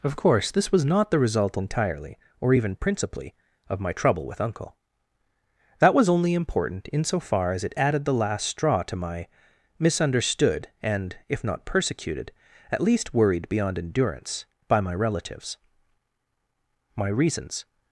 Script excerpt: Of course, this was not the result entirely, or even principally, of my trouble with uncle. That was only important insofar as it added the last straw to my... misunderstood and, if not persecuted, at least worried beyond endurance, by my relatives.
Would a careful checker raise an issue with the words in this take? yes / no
yes